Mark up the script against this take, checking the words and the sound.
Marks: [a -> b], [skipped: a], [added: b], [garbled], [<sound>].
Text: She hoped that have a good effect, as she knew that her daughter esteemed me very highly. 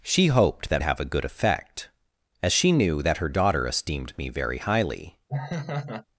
She hoped that have a good effect, as she knew that her daughter esteemed me very highly. [laugh]